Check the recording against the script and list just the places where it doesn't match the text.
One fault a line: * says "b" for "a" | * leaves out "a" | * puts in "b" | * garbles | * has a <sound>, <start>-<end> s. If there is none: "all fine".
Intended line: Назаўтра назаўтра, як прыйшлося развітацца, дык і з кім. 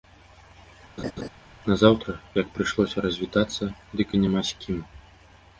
* has a laugh, 1.0-1.3 s
* leaves out "назаўтра"
* puts in "няма"